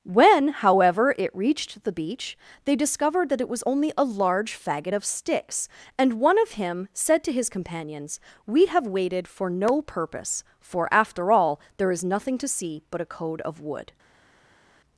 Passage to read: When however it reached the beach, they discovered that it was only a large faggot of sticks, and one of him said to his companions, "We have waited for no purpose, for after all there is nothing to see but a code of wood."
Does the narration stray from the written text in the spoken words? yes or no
no